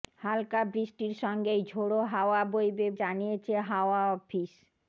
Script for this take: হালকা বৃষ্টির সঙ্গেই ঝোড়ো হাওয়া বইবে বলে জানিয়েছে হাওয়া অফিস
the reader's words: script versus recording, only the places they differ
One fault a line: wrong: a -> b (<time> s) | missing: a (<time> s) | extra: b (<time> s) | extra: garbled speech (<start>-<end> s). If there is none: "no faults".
missing: বলে (2.9 s)